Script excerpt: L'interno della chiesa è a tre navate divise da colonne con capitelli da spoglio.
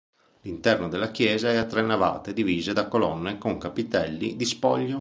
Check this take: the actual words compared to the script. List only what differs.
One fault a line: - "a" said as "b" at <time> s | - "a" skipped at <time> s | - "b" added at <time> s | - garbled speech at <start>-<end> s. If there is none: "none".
- "da" said as "di" at 4.4 s